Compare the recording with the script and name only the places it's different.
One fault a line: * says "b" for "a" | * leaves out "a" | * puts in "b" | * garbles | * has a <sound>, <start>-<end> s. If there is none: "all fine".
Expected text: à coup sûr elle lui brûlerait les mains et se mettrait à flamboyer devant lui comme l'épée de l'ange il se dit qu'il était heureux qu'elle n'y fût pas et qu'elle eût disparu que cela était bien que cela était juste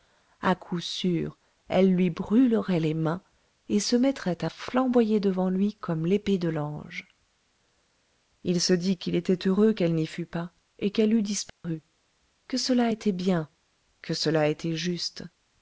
* has a dropout, 11.5-11.6 s